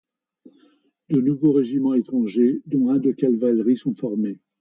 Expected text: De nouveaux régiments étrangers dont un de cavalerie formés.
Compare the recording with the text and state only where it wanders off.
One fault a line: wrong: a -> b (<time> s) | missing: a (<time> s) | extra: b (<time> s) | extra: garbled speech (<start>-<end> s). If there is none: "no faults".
extra: sont (3.7 s)